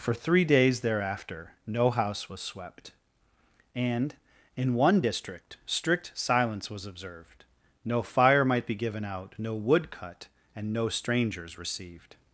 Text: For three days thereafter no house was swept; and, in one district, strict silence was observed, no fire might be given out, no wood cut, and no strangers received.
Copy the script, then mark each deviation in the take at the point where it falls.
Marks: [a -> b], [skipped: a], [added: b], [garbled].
For three days thereafter no house was swept; and, in one district, strict silence was observed, no fire might be given out, no wood cut, and no strangers received.